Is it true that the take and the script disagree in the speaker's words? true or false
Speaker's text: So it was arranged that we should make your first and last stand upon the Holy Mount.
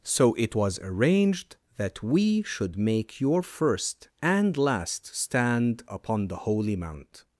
false